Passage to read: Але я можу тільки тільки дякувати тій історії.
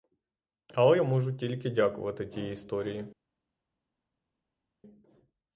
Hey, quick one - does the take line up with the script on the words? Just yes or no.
no